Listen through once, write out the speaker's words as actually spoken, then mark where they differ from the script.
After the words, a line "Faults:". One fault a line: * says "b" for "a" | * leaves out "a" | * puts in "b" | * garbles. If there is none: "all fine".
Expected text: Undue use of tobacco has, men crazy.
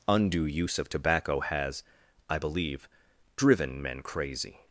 Undue use of tobacco has, I believe, driven men crazy.
Faults:
* puts in "I believe driven"